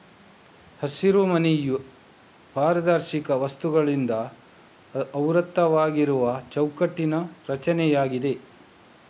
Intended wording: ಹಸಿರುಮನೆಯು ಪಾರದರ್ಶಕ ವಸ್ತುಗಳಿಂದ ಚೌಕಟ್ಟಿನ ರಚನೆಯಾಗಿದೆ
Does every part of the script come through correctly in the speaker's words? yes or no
no